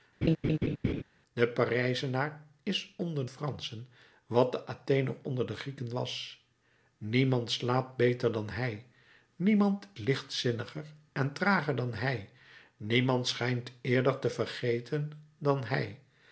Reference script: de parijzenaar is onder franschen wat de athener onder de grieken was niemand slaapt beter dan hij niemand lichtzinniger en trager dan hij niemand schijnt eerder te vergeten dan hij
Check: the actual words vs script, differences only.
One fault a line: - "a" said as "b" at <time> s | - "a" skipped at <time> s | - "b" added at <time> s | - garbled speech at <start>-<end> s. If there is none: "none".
none